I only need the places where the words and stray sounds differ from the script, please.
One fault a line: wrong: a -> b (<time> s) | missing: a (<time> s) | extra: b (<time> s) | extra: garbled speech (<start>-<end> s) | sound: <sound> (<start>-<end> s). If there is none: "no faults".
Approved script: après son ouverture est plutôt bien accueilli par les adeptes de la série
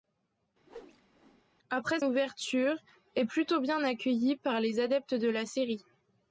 sound: whoosh (0.6-1.4 s)
missing: son (2.0 s)